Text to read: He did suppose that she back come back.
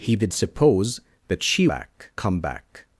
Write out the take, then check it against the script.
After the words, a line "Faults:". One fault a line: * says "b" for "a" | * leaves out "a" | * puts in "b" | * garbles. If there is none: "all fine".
He did suppose that she back come back.
Faults:
all fine